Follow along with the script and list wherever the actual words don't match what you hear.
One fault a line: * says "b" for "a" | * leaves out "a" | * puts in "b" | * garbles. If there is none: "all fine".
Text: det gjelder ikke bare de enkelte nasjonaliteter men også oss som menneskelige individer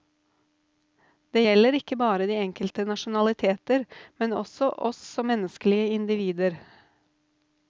all fine